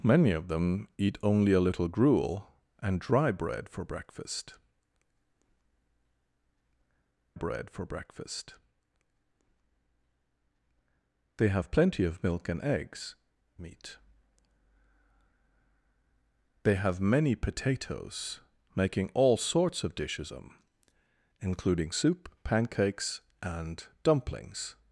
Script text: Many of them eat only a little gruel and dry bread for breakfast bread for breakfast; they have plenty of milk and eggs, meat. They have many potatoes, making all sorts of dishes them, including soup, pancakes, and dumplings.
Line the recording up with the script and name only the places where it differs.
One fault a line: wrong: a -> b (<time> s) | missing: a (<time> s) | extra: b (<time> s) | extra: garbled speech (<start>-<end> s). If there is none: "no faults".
no faults